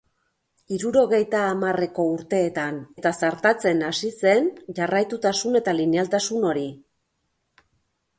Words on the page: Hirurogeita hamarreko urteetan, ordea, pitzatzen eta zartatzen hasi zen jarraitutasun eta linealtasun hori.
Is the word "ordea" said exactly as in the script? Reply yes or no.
no